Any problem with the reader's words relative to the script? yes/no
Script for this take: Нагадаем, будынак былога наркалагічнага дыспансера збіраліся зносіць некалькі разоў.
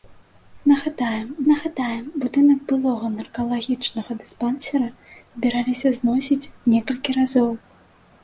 yes